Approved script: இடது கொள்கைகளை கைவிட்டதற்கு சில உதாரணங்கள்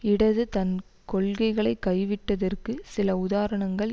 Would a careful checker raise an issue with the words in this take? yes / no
yes